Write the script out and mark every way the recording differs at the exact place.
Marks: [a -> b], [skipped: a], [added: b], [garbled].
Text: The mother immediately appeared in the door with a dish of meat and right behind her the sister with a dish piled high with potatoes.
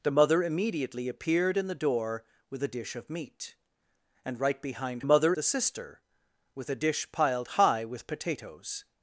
The mother immediately appeared in the door with a dish of meat and right behind [her -> mother] the sister with a dish piled high with potatoes.